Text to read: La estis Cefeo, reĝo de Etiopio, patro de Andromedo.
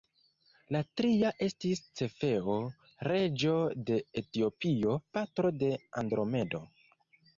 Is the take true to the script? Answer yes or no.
no